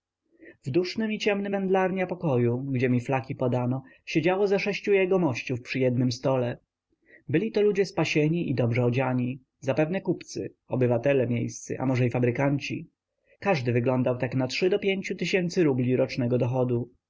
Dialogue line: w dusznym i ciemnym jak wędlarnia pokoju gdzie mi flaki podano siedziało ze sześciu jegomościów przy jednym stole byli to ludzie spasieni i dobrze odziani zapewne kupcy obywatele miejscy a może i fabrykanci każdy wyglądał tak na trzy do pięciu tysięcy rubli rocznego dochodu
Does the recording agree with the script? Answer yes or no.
no